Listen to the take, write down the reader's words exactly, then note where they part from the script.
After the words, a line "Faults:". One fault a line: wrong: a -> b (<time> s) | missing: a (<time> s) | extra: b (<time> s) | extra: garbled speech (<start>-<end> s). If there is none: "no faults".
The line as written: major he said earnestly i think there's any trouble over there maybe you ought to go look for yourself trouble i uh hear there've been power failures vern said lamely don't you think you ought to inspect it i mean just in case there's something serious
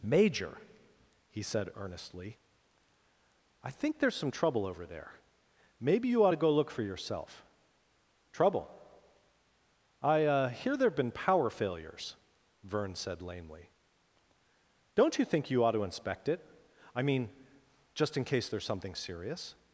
major he said earnestly i think there's some trouble over there maybe you ought to go look for yourself trouble i uh hear there've been power failures vern said lamely don't you think you ought to inspect it i mean just in case there's something serious
Faults:
wrong: any -> some (4.2 s)